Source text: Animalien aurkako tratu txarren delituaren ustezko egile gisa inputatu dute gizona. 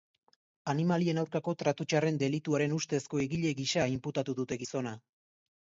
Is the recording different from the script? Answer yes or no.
no